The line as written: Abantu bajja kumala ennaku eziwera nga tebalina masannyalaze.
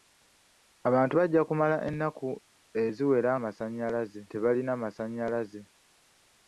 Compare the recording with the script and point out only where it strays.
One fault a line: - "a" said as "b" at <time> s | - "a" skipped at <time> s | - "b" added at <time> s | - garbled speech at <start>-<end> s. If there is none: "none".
- "nga" said as "masannyalaze" at 3.4 s